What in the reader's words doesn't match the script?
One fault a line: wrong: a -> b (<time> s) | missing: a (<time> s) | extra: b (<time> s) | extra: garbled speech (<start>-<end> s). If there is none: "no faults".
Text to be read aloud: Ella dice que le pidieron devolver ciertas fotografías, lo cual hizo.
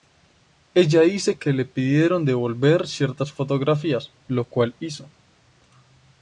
no faults